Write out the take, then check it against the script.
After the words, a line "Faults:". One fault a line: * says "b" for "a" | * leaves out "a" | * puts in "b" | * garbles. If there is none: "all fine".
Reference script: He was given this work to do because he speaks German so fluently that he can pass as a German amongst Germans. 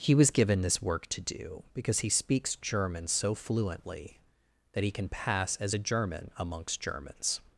He was given this work to do because he speaks German so fluently that he can pass as a German amongst Germans.
Faults:
all fine